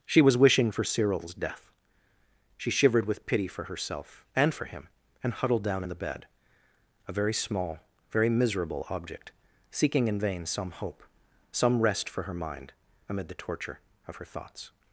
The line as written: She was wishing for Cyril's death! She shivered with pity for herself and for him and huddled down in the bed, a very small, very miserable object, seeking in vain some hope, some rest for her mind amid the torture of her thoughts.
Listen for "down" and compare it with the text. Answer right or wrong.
right